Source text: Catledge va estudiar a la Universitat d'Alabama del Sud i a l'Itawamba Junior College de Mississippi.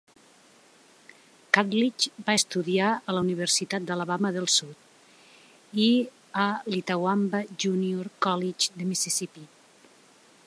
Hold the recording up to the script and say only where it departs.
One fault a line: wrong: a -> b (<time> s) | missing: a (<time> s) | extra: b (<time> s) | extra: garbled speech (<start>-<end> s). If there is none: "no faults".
no faults